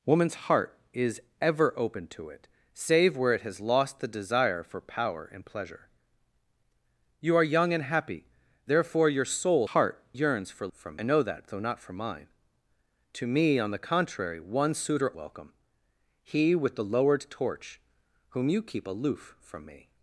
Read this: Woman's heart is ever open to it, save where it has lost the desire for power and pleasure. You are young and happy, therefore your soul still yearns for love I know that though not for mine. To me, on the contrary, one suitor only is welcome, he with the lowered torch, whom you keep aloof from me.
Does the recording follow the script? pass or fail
fail